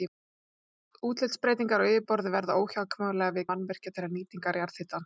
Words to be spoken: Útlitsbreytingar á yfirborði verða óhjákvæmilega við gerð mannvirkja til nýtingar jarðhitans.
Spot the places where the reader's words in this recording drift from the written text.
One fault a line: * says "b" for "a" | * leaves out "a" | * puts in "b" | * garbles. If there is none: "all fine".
* leaves out "gerð"